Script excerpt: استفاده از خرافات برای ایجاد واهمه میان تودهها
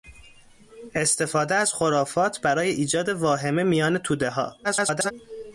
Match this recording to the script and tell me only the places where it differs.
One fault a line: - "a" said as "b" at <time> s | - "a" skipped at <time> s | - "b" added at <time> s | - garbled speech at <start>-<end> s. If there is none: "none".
- garbled speech at 4.6-5.1 s